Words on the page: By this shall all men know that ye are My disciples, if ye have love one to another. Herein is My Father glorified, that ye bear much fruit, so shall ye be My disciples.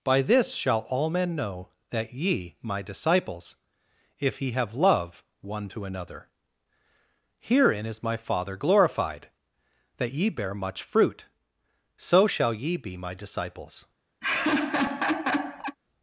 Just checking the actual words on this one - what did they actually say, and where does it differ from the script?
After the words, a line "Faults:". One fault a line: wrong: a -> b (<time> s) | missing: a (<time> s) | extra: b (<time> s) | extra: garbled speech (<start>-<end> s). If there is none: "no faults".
By this shall all men know that ye My disciples, if ye have love one to another. Herein is My Father glorified, that ye bear much fruit, so shall ye be My disciples.
Faults:
missing: are (2.5 s)